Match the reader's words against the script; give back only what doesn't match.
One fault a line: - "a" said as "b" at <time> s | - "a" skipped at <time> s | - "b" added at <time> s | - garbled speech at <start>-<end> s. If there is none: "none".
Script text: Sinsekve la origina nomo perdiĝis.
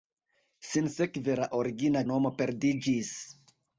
none